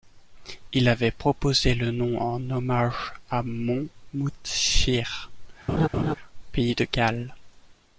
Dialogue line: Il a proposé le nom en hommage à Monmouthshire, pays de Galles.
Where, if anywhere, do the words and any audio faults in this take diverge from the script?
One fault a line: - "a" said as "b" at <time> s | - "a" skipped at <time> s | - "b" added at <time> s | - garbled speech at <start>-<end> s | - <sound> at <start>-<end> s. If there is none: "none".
- "a" said as "avait" at 0.9 s
- laugh at 5.7-6.1 s